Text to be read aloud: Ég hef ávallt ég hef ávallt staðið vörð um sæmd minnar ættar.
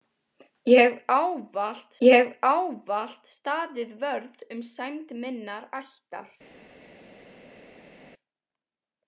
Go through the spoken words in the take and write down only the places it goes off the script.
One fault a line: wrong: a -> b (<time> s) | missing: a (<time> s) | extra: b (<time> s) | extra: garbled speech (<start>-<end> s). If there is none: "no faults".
no faults